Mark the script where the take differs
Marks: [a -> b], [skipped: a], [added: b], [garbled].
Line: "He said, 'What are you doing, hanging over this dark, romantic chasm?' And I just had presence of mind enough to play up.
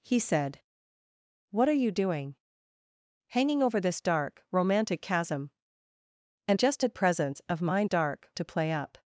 "He said, 'What are you doing, hanging over this dark, romantic chasm?' And [skipped: I] just had presence of mind [enough -> dark] to play up.